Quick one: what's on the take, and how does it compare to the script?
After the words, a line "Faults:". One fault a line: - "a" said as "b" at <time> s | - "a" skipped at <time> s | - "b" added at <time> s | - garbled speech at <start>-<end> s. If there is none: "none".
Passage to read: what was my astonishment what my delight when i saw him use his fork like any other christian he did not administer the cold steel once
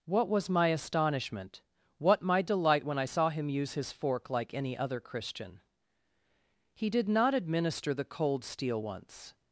what was my astonishment what my delight when i saw him use his fork like any other christian he did not administer the cold steel once
Faults:
none